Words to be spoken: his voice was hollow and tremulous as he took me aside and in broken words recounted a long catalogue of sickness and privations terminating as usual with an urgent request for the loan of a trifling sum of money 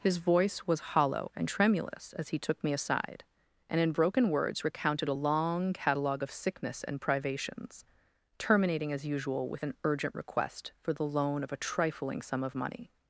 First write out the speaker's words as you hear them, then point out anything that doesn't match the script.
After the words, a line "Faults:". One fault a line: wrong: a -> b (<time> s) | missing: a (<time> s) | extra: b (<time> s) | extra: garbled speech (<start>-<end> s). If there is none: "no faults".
his voice was hollow and tremulous as he took me aside and in broken words recounted a long catalogue of sickness and privations terminating as usual with an urgent request for the loan of a trifling sum of money
Faults:
no faults